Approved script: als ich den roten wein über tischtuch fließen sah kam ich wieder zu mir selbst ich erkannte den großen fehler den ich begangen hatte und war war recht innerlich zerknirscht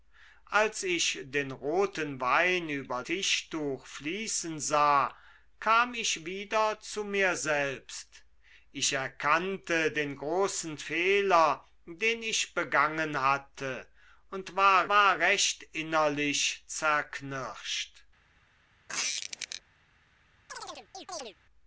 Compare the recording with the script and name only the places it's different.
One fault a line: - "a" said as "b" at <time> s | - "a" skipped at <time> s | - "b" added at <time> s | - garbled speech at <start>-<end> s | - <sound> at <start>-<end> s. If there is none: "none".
- squeak at 18.9-19.6 s
- chirp at 20.5-21.3 s